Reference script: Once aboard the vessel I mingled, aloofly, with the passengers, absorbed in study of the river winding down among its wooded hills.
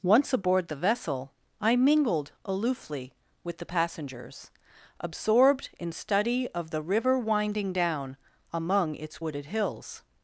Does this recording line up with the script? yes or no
yes